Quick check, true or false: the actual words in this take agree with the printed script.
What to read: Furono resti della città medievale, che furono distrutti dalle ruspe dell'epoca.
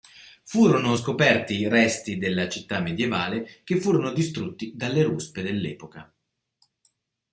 false